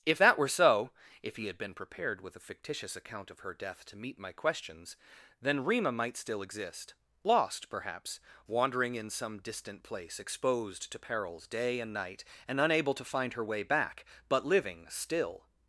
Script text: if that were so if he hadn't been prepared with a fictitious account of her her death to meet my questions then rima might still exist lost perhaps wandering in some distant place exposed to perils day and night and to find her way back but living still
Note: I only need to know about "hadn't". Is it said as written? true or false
false